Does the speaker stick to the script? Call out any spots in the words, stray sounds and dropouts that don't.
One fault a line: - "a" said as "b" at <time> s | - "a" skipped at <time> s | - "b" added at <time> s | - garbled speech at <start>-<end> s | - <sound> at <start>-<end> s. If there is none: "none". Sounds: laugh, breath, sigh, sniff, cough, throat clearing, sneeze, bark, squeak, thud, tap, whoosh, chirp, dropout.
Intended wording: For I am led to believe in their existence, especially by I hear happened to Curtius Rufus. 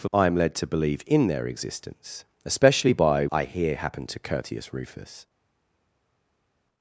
none